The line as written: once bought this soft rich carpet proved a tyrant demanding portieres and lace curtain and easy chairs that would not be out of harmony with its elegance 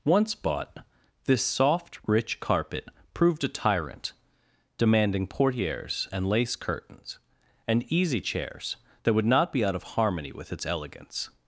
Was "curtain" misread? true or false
true